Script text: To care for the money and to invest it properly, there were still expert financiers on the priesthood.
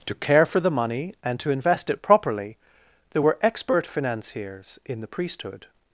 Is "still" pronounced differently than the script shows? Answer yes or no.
yes